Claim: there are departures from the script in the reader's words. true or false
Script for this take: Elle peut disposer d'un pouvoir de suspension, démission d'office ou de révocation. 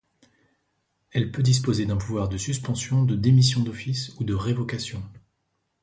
true